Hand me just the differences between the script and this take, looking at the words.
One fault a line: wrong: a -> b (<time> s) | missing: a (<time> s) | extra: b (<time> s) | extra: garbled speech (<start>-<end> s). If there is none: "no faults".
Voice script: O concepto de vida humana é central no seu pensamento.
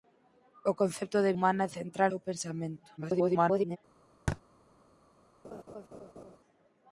missing: vida (1.4 s)
missing: no (2.1 s)
extra: garbled speech (3.0-3.8 s)